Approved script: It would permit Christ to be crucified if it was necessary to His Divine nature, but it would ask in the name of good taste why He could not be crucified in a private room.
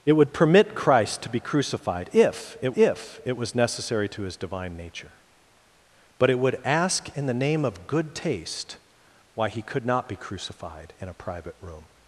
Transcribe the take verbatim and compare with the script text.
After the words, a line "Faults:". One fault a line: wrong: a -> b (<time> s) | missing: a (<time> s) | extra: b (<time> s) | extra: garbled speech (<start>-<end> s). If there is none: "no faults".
It would permit Christ to be crucified if it if it was necessary to His Divine nature, but it would ask in the name of good taste why He could not be crucified in a private room.
Faults:
extra: if it (2.8 s)